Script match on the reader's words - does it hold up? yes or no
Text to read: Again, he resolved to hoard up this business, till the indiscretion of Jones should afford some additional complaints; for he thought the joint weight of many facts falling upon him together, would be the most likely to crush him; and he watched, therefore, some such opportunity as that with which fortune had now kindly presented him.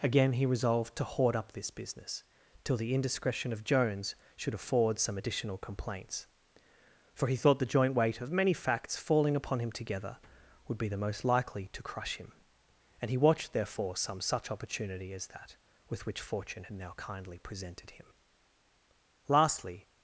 no